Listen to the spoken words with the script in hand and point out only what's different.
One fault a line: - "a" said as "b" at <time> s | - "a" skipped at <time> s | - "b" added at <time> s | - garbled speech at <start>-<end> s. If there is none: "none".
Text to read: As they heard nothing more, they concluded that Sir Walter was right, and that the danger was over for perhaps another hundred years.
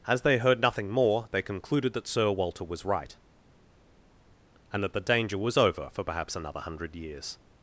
none